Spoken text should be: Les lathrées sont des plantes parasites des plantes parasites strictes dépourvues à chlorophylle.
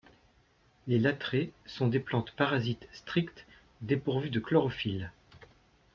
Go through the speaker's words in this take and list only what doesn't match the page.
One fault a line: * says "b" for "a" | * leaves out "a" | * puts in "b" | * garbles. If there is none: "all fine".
* leaves out "des plantes parasites"
* says "de" for "à"